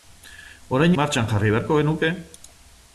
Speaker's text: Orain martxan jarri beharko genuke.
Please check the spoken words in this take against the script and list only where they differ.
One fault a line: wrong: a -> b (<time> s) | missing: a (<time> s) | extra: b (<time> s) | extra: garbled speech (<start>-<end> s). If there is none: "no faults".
no faults